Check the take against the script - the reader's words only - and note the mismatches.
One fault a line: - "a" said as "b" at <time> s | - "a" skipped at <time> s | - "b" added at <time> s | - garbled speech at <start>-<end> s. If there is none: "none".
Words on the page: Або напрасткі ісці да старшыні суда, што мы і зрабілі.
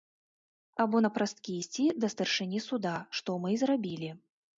none